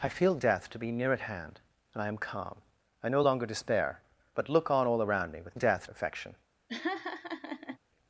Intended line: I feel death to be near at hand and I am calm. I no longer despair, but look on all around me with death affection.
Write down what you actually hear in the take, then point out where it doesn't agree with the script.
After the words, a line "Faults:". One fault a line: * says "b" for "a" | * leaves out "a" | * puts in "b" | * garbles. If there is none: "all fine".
I feel death to be near at hand and I am calm. I no longer despair, but look on all around me with death affection.
Faults:
all fine